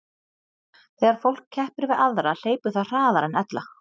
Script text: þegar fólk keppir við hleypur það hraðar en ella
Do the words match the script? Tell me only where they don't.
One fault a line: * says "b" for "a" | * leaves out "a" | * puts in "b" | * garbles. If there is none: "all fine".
* puts in "aðra"